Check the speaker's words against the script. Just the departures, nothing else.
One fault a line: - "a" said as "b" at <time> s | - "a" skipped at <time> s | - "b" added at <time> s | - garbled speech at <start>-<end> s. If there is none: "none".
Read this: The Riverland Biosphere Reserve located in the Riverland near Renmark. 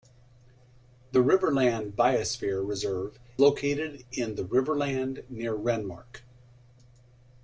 none